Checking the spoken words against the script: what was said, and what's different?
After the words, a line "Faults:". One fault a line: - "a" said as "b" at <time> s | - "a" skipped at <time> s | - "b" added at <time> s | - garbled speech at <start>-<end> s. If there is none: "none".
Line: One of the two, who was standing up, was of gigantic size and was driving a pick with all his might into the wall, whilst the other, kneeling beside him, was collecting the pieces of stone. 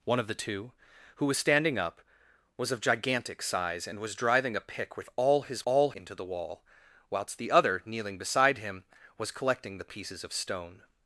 One of the two, who was standing up, was of gigantic size and was driving a pick with all his all into the wall, whilst the other, kneeling beside him, was collecting the pieces of stone.
Faults:
- "might" said as "all" at 5.6 s